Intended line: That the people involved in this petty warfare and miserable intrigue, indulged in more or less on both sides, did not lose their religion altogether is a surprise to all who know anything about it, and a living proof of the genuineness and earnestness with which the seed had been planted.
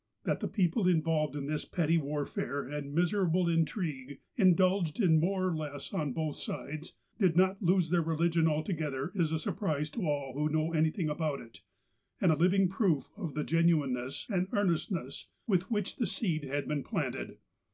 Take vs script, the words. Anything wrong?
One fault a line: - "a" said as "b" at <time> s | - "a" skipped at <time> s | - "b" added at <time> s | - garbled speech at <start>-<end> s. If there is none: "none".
none